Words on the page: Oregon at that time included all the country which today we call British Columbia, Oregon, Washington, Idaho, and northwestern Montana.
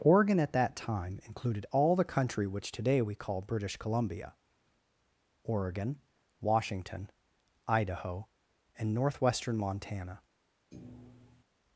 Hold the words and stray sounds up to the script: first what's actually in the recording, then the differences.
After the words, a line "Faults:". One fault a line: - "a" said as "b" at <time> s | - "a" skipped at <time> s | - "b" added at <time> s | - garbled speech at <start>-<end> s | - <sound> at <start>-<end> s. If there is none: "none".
Oregon at that time included all the country which today we call British Columbia, Oregon, Washington, Idaho, and northwestern Montana.
Faults:
- thud at 10.7-11.4 s